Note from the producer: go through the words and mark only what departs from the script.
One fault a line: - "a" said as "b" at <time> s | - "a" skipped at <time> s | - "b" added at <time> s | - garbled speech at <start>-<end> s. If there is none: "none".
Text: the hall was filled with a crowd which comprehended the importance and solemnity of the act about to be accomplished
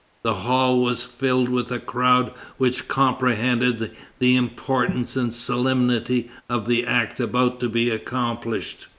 none